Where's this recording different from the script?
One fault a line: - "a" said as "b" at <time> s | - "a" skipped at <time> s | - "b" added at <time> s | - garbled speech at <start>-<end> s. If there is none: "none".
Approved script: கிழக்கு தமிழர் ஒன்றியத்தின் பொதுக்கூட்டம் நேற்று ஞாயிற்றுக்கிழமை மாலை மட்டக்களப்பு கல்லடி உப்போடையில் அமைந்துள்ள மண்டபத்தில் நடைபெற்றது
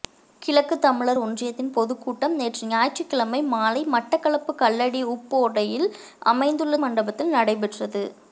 none